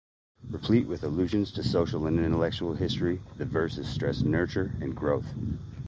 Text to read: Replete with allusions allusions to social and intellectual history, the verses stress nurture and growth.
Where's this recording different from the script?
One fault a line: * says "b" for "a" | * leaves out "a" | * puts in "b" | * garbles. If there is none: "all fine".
* leaves out "allusions"